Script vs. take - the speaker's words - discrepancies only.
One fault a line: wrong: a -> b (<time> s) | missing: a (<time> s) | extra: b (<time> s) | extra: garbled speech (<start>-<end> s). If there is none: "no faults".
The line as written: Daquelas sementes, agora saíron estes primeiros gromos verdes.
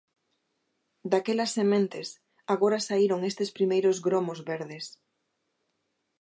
no faults